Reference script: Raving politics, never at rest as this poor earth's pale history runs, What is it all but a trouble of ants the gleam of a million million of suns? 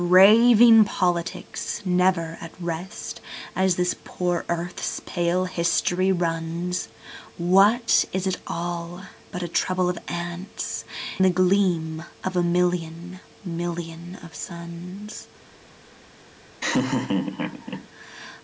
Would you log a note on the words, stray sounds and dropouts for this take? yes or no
yes